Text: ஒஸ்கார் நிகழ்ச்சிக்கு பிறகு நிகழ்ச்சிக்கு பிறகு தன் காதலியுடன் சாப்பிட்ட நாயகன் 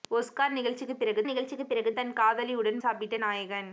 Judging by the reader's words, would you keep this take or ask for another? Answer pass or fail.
pass